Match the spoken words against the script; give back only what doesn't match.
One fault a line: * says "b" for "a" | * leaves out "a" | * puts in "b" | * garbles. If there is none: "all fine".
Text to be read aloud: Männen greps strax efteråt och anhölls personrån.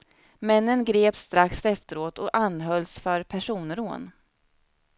* puts in "för"